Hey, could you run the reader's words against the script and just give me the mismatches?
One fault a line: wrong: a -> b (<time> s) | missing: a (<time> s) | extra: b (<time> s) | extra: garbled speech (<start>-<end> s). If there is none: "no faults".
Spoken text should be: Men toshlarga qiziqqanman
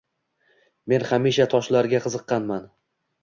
extra: hamisha (1.1 s)